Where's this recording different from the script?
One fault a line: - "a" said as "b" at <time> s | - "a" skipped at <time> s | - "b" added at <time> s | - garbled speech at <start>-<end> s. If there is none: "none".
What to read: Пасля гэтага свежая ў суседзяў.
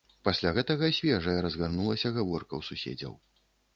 - "разгарнулася гаворка" added at 1.4 s